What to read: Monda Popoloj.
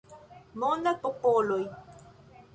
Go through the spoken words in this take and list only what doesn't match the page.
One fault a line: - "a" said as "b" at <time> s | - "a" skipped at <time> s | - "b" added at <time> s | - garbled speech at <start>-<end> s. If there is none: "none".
none